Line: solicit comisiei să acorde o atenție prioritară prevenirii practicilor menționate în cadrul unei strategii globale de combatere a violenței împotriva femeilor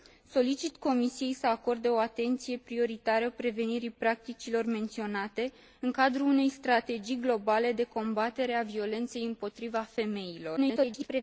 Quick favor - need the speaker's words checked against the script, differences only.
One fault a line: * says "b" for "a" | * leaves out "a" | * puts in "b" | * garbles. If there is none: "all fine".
* garbles